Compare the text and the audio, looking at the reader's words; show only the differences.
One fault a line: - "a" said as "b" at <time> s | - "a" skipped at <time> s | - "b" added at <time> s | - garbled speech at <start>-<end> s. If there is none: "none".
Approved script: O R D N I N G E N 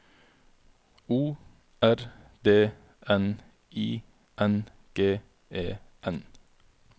none